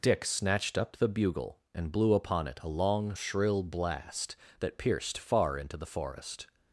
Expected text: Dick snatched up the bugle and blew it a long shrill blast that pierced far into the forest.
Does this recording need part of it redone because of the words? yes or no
yes